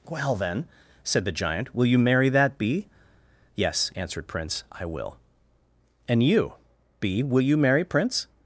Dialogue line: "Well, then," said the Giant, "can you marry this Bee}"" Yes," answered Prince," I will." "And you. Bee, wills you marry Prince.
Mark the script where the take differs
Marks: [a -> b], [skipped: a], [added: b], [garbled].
"Well, then," said the Giant, ["can -> will] you marry [this -> that] Bee}"" Yes," answered Prince," I will." "And you. Bee, [wills -> will] you marry Prince.